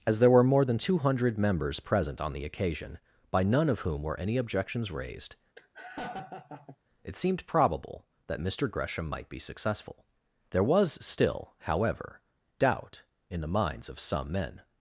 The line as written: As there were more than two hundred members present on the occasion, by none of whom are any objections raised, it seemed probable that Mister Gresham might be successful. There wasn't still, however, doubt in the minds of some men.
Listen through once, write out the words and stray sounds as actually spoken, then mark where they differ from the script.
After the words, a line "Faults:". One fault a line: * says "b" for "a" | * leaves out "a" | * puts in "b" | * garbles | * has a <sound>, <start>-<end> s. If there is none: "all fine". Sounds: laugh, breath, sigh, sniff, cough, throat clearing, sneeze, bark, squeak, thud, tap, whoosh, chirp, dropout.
As there were more than two hundred members present on the occasion, by none of whom were any objections raised, it seemed probable that Mister Gresham might be successful. There was still, however, doubt in the minds of some men.
Faults:
* says "were" for "are"
* has a laugh, 5.6-6.8 s
* says "was" for "wasn't"